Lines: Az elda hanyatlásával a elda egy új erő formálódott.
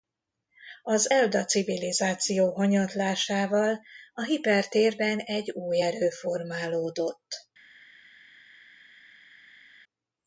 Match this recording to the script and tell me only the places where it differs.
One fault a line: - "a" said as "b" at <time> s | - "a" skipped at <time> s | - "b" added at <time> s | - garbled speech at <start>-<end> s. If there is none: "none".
- "civilizáció" added at 1.4 s
- "elda" said as "hipertérben" at 4.2 s